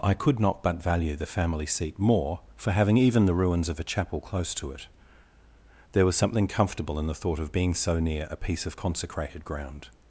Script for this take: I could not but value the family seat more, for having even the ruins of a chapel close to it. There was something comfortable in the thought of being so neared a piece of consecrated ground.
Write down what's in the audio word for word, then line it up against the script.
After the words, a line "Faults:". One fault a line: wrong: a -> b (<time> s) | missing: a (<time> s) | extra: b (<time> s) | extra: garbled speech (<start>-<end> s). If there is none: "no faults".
I could not but value the family seat more, for having even the ruins of a chapel close to it. There was something comfortable in the thought of being so near a piece of consecrated ground.
Faults:
wrong: neared -> near (8.0 s)